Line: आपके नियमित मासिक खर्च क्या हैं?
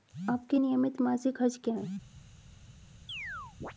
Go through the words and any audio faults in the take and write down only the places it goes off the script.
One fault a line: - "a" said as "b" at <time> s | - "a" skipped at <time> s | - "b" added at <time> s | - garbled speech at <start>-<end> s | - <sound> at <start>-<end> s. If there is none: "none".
- chirp at 3.1-3.7 s